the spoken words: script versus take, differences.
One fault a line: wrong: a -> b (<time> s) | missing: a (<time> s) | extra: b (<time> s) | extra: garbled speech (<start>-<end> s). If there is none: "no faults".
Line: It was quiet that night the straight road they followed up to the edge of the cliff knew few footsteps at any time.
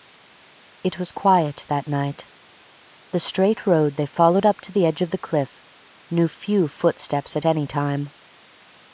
no faults